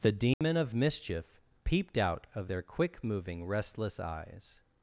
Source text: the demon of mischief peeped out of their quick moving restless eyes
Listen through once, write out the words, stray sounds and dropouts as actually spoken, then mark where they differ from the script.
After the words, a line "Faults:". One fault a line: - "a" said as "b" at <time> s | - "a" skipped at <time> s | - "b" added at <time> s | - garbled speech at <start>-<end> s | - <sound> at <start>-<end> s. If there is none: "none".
the demon of mischief peeped out of their quick moving restless eyes
Faults:
- dropout at 0.3-0.4 s